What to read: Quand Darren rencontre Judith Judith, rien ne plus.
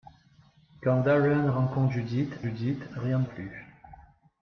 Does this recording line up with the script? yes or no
yes